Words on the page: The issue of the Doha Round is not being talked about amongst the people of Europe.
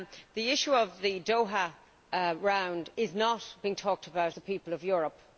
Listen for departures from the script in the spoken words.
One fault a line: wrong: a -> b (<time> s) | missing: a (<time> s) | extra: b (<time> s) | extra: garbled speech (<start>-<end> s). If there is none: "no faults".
missing: amongst (4.3 s)